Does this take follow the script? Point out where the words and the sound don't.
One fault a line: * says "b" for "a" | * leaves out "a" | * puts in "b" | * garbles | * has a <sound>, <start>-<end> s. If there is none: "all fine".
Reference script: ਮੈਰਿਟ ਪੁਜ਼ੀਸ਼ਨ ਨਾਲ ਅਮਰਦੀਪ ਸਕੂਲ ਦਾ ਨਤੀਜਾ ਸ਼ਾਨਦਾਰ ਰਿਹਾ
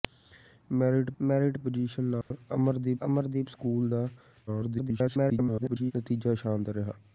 * puts in "ਮੈਰਿਟ"
* has a dropout, 2.2-2.3 s
* puts in "ਅਮਰਦੀਪ"
* garbles